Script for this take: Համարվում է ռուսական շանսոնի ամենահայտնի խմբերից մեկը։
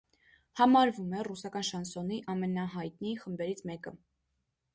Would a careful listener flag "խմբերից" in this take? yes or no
no